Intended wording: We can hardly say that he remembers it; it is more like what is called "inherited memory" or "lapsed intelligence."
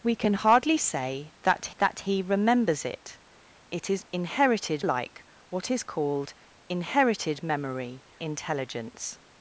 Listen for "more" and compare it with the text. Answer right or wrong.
wrong